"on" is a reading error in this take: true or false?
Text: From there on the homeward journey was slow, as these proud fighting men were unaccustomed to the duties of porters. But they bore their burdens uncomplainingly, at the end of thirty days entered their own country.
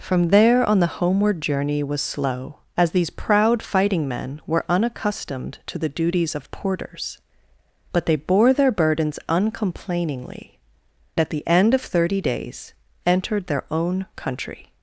false